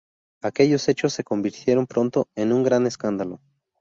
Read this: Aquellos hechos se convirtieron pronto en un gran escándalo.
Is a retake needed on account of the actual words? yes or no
no